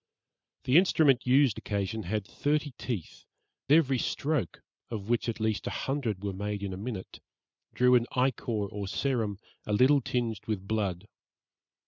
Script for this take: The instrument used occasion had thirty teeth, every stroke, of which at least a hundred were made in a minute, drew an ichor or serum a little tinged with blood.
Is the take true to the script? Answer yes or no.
yes